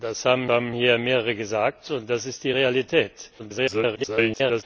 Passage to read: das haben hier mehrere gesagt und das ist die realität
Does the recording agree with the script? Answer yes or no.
no